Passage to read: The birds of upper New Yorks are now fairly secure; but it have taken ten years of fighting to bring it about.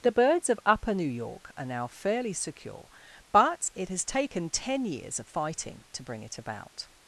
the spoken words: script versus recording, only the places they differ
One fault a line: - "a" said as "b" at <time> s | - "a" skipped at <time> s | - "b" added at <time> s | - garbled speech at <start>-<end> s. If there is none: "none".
- "Yorks" said as "York" at 1.1 s
- "have" said as "has" at 3.9 s